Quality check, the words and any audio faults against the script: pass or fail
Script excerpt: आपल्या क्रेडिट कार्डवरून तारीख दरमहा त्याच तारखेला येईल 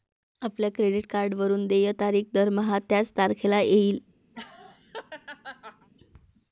fail